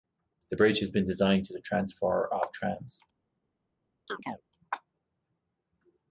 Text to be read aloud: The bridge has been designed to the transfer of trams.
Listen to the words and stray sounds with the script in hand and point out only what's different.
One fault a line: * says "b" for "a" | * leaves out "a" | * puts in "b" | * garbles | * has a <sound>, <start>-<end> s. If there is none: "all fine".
* has a chirp, 4.1-4.4 s